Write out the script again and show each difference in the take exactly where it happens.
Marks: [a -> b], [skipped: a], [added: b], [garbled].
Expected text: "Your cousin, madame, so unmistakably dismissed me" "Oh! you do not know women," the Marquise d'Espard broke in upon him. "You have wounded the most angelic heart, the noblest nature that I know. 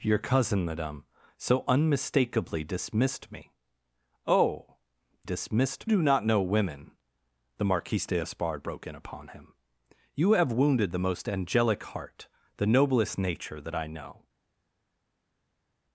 "Your cousin, madame, so unmistakably dismissed me" "Oh! [you -> dismissed] do not know women," the Marquise d'Espard broke in upon him. "You have wounded the most angelic heart, the noblest nature that I know.